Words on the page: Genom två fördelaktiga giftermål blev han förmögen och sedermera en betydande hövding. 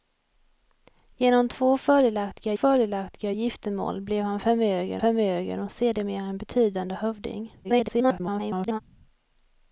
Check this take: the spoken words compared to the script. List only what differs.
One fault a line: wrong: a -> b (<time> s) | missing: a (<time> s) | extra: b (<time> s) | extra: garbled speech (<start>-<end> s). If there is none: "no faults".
extra: fördelaktiga (2.5 s)
extra: förmögen (5.0 s)
extra: garbled speech (7.6-8.8 s)